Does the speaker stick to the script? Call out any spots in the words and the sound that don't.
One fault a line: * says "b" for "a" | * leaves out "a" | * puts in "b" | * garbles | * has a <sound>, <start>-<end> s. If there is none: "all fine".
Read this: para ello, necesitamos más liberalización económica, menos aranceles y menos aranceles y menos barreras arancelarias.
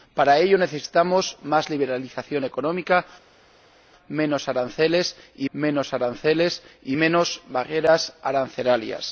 all fine